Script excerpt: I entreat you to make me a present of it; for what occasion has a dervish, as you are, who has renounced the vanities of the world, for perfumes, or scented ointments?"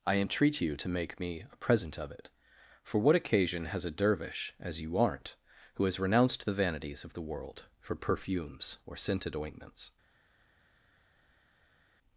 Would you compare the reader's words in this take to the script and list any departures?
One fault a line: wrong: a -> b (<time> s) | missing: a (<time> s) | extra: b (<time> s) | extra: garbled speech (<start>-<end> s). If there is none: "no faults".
wrong: are -> aren't (5.0 s)